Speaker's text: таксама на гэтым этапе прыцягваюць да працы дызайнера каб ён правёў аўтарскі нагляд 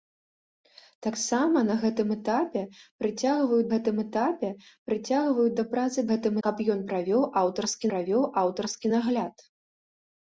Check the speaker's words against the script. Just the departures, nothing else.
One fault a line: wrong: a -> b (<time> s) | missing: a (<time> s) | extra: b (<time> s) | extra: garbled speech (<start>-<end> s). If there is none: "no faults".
extra: гэтым этапе прыцягваюць (3.7 s)
wrong: дызайнера -> гэтым (6.1 s)
extra: правёў аўтарскі (7.9 s)